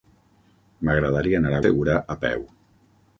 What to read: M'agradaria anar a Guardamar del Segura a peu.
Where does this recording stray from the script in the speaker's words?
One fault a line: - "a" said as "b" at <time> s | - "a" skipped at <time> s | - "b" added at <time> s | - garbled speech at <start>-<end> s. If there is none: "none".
- "Guardamar del" skipped at 1.6 s